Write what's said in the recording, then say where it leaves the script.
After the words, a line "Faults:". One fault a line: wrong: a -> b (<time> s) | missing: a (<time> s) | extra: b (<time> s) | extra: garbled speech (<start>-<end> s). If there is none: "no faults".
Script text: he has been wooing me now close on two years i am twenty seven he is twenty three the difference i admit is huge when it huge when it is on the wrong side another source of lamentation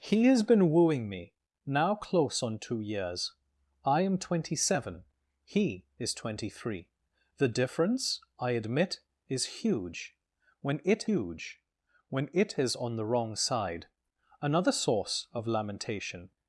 he has been wooing me now close on two years i am twenty seven he is twenty three the difference i admit is huge when it huge when it is on the wrong side another source of lamentation
Faults:
no faults